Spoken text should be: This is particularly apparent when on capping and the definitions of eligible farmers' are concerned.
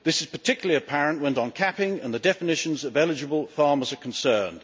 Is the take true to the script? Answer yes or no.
yes